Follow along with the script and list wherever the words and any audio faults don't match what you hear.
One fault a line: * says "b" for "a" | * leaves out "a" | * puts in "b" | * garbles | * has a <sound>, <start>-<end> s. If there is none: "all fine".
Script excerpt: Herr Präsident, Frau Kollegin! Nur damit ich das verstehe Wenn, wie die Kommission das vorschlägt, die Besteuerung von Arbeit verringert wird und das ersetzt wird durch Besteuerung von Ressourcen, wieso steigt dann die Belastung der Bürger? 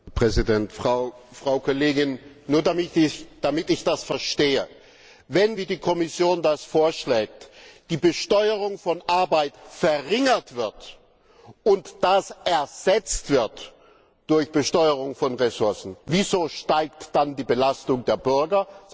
all fine